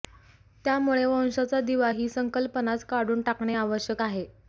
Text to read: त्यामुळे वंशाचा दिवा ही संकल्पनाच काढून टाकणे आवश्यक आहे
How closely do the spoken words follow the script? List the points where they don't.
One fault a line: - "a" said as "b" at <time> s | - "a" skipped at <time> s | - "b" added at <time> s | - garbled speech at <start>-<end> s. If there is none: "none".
none